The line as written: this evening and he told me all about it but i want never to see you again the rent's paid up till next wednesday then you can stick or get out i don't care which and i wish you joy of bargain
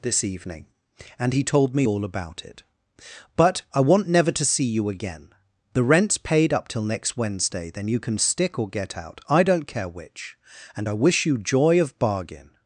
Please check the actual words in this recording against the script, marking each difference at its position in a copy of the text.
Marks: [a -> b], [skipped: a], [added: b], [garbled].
this evening and he told me all about it but i want never to see you again the rent's paid up till next wednesday then you can stick or get out i don't care which and i wish you joy of bargain